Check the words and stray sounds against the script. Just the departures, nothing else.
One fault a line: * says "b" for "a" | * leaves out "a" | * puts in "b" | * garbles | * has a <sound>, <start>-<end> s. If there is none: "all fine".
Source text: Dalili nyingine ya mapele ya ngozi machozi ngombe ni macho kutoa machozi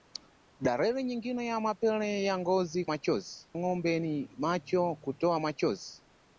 all fine